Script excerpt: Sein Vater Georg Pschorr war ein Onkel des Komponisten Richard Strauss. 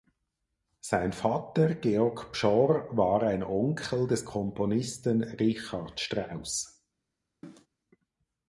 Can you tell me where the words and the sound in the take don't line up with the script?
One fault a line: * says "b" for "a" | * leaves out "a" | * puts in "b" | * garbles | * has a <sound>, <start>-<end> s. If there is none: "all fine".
* has a cough, 7.4-7.7 s